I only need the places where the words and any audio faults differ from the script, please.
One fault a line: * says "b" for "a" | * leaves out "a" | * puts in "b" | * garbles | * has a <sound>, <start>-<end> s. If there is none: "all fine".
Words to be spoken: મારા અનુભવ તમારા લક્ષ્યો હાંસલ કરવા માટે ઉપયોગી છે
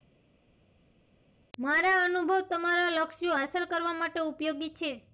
all fine